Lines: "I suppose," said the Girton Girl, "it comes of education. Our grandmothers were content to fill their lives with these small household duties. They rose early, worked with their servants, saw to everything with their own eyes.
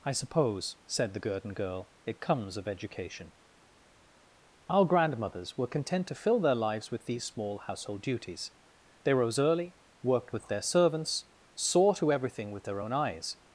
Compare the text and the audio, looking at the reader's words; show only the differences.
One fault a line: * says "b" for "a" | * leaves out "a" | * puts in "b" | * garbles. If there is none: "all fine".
all fine